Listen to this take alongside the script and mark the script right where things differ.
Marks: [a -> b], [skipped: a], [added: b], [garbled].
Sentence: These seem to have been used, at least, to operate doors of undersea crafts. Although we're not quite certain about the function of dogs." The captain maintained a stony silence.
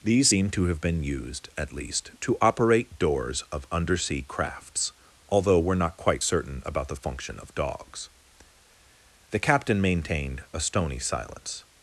These seem to have been used, at least, to operate doors of undersea crafts. Although we're not quite certain about the function of dogs." The captain maintained a stony silence.